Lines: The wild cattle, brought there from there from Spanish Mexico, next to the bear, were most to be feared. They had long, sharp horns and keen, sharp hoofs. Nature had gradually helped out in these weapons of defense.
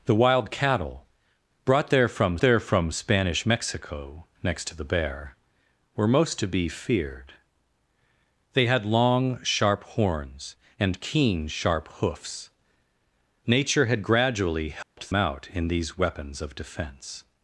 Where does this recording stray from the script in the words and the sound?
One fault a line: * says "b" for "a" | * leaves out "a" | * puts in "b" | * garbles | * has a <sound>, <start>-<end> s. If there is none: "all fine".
* has a dropout, 14.8-15.0 s